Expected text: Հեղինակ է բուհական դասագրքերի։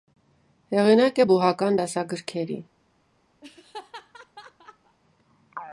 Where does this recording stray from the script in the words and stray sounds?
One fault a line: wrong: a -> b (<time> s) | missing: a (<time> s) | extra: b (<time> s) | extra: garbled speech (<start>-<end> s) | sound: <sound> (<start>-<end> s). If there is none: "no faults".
sound: laugh (3.4-5.0 s)